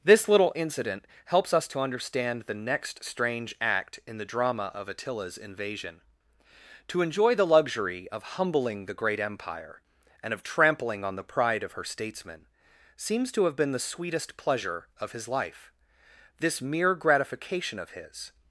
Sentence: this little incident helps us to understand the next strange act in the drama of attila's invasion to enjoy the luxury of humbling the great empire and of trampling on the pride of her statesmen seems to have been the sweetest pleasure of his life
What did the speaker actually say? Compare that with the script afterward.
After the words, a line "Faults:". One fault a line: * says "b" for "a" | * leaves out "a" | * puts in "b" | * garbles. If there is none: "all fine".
this little incident helps us to understand the next strange act in the drama of attila's invasion to enjoy the luxury of humbling the great empire and of trampling on the pride of her statesmen seems to have been the sweetest pleasure of his life this mere gratification of his
Faults:
* puts in "this mere gratification of his"